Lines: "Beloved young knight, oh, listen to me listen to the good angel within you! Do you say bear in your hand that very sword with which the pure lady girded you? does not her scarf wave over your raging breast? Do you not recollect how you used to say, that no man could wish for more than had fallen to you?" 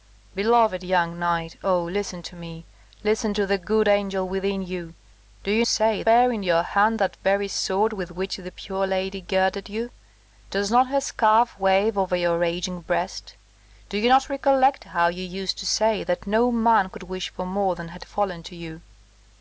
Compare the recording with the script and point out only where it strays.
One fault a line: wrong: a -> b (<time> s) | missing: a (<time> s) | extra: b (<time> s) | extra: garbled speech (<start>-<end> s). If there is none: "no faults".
no faults